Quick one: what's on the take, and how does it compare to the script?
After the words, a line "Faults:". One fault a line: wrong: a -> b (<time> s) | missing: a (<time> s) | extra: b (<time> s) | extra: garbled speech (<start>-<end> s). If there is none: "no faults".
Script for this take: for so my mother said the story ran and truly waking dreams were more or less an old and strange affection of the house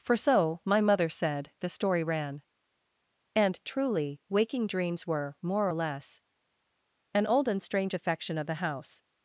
for so my mother said the story ran and truly waking dreams were more or less an old and strange affection of the house
Faults:
no faults